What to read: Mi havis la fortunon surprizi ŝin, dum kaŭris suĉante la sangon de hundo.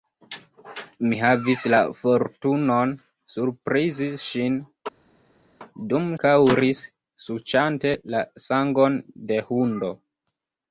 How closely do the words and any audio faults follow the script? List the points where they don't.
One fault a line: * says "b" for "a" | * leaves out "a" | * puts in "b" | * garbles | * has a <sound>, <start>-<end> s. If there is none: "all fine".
all fine